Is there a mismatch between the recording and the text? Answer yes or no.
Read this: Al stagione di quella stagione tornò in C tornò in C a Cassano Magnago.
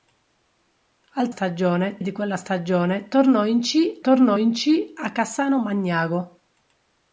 no